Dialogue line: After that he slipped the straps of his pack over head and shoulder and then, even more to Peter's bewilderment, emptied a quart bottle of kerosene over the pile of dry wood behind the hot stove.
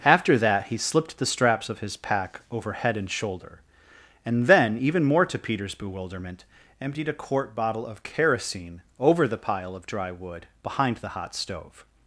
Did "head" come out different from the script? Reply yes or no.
no